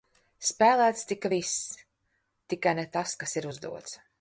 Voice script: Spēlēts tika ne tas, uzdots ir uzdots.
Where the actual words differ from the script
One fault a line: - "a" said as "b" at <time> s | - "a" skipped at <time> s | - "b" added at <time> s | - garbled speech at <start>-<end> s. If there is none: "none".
- "viss tikai" added at 1.3 s
- "uzdots" said as "kas" at 3.2 s